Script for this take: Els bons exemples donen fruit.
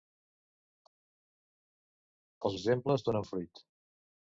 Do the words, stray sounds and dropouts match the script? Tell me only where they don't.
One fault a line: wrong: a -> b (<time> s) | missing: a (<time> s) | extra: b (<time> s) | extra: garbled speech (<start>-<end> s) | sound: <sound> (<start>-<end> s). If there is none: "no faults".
missing: bons (2.6 s)